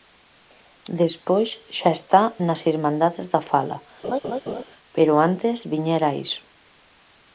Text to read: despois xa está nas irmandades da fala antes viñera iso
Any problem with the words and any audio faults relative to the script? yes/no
yes